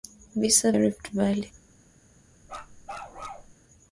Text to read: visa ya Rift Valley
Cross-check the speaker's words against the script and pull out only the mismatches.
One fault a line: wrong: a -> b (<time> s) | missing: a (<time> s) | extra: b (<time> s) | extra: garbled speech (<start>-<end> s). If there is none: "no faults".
no faults